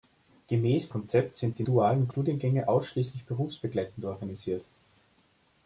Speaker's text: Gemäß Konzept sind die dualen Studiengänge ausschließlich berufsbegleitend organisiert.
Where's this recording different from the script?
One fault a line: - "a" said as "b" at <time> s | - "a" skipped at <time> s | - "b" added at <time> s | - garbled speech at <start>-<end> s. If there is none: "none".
none